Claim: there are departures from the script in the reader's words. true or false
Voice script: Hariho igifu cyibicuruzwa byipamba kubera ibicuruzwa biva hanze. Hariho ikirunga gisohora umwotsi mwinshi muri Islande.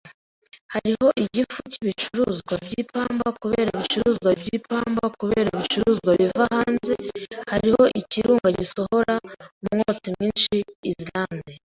true